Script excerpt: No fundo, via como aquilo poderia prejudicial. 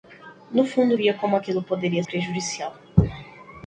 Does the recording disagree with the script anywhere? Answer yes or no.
no